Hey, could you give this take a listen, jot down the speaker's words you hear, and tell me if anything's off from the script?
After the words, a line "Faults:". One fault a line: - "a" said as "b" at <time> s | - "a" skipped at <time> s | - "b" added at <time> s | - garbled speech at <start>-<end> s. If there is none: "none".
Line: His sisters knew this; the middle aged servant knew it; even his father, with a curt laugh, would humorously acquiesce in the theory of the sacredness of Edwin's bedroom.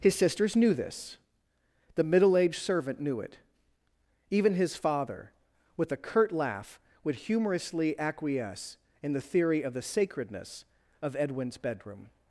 His sisters knew this; the middle aged servant knew it; even his father, with a curt laugh, would humorously acquiesce in the theory of the sacredness of Edwin's bedroom.
Faults:
none